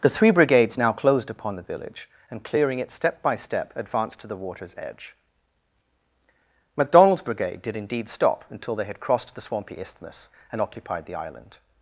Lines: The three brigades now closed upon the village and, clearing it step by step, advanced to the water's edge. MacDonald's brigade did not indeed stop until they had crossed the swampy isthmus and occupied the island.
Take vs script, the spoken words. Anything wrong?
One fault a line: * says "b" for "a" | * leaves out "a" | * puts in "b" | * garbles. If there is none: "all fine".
* leaves out "not"